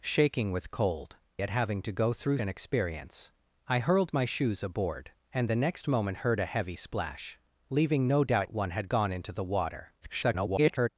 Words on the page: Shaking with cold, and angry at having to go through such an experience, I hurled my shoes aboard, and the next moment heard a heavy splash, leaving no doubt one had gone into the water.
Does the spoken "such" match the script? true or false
false